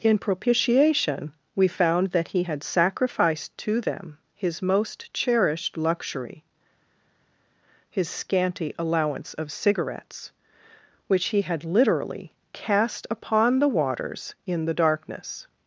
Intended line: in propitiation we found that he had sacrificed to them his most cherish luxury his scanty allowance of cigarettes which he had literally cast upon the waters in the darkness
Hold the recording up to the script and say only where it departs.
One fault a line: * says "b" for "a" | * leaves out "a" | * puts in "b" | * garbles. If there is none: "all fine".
* says "cherished" for "cherish"